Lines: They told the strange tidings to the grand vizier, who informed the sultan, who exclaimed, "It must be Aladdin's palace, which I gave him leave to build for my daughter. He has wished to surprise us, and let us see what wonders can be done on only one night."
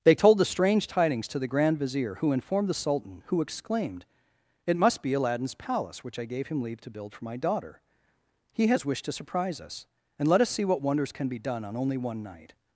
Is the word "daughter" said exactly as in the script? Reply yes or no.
yes